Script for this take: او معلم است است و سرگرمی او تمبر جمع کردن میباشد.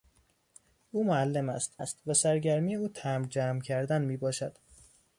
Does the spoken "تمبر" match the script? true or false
true